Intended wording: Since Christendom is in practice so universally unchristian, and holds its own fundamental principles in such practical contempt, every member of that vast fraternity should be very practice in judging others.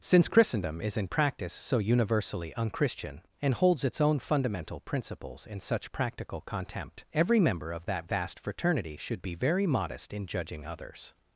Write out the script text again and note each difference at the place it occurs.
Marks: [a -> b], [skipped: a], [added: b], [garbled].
Since Christendom is in practice so universally unchristian, and holds its own fundamental principles in such practical contempt, every member of that vast fraternity should be very [practice -> modest] in judging others.